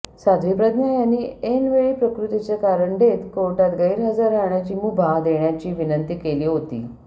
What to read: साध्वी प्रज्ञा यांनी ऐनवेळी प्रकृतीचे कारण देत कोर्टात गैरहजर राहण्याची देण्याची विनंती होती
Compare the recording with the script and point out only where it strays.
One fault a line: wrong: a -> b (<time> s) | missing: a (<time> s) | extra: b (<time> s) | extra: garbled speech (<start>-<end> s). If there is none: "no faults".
extra: मुभा (4.7 s)
extra: केली (6.2 s)